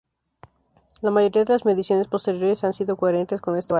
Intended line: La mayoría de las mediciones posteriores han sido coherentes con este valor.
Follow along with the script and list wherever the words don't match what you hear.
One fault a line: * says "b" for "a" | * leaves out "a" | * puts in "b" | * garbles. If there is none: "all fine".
all fine